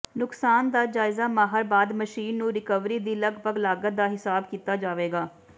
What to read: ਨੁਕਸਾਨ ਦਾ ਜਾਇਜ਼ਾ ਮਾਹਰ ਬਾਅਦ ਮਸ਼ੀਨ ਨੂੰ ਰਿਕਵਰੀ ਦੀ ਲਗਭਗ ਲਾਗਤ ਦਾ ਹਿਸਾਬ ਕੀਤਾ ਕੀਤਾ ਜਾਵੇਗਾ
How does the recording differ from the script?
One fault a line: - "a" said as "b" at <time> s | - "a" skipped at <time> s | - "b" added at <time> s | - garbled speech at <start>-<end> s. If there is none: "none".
- "ਕੀਤਾ" skipped at 4.8 s